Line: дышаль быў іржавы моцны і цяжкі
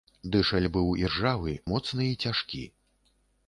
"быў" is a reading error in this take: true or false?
false